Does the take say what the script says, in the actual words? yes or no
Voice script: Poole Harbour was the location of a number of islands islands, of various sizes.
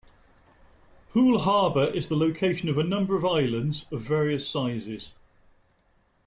no